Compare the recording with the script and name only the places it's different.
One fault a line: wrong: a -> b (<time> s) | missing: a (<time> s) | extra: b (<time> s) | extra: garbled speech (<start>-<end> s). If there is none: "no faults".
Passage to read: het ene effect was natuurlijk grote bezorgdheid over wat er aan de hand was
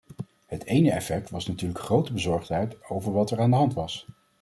no faults